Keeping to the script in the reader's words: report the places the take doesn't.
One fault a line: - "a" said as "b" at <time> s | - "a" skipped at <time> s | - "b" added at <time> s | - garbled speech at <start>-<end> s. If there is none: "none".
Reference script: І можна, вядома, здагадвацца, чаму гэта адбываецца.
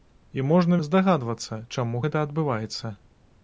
- "вядома" skipped at 0.8 s